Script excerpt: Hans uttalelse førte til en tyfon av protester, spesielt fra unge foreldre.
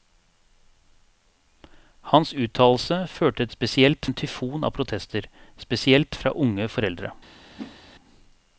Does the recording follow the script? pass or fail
fail